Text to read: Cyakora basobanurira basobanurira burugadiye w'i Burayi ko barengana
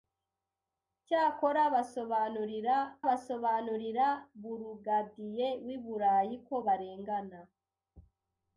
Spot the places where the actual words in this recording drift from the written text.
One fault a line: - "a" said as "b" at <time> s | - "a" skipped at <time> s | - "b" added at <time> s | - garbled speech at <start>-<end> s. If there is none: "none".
none